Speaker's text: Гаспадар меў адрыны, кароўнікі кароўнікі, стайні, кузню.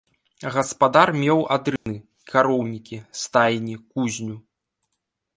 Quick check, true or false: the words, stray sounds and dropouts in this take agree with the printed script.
false